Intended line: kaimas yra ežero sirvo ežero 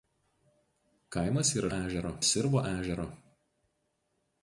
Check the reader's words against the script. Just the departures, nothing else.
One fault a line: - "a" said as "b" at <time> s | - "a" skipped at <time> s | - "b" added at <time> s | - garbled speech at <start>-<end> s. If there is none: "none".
none